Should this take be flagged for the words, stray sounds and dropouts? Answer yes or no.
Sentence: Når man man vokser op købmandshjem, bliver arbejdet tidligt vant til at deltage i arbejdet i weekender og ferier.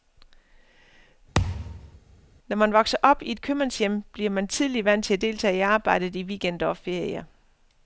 yes